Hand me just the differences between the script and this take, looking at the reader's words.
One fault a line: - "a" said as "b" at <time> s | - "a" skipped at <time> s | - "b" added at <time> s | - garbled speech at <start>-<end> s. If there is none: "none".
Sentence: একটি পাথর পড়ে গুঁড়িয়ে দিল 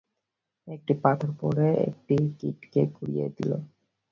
- "একটি কীটকে" added at 1.9 s